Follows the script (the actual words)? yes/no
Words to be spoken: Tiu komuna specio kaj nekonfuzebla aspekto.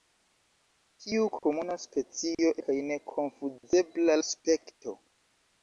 yes